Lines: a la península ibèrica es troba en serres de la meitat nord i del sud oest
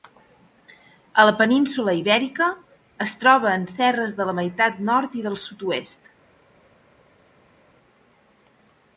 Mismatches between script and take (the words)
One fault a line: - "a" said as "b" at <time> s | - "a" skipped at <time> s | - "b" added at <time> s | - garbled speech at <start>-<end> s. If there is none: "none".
none